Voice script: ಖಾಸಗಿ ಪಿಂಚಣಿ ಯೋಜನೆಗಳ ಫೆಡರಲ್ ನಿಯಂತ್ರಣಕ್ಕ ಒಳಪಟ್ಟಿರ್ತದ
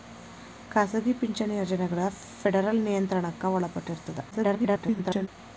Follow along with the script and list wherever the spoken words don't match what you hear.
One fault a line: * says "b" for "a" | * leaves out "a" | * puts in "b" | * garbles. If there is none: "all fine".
* garbles